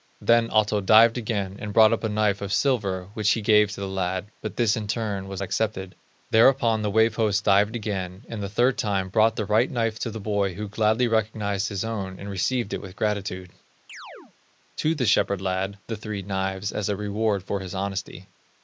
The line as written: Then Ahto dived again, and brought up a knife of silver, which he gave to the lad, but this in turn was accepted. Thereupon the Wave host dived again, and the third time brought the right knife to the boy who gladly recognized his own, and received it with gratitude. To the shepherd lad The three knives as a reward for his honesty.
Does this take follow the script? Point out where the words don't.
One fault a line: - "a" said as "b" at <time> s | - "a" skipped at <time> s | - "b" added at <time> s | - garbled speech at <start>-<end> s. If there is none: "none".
none